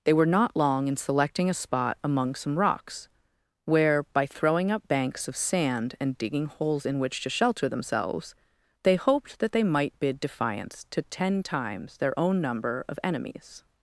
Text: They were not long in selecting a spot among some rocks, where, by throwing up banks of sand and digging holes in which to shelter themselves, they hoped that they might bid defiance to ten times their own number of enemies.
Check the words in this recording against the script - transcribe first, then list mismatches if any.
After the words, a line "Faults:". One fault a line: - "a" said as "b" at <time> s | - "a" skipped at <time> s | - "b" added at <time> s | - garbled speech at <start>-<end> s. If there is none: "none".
They were not long in selecting a spot among some rocks, where, by throwing up banks of sand and digging holes in which to shelter themselves, they hoped that they might bid defiance to ten times their own number of enemies.
Faults:
none